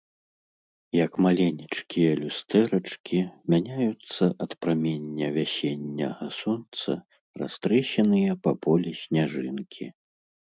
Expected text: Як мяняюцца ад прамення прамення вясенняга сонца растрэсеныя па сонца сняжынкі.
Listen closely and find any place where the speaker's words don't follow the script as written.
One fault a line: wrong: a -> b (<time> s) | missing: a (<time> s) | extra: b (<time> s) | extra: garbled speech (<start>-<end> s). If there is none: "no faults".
extra: маленечкія люстэрачкі (1.2 s)
missing: прамення (5.3 s)
wrong: сонца -> полі (8.7 s)